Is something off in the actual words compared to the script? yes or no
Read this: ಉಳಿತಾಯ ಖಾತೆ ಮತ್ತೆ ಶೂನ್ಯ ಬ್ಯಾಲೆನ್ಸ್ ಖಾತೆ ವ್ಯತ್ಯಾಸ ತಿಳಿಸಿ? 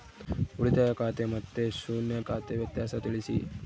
yes